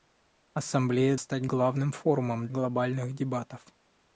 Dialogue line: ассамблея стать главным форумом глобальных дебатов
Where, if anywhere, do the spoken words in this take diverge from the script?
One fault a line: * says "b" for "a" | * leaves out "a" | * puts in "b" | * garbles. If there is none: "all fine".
all fine